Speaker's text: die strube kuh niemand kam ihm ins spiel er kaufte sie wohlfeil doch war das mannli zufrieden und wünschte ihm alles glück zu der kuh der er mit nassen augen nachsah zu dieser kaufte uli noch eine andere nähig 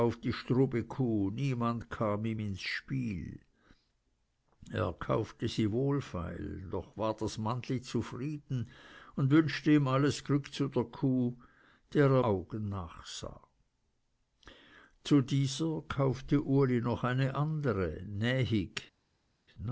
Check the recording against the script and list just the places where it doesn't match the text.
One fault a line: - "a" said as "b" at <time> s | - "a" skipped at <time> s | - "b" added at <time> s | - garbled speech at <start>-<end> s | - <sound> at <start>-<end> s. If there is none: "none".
- "mit nassen" skipped at 12.2 s